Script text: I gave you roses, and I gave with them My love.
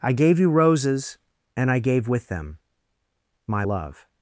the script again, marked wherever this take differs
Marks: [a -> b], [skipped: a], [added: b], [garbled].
I gave you roses, and I gave with them My love.